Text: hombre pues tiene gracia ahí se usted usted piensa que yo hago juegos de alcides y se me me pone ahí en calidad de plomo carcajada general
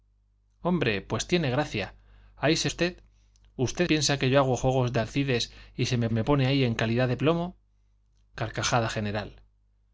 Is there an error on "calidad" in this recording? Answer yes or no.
no